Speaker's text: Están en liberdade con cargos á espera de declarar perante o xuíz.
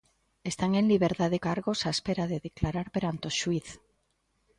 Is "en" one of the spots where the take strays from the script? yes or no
no